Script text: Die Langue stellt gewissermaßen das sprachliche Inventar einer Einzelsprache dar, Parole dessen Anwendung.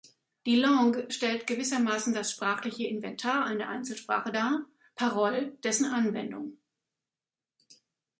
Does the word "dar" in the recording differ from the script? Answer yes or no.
no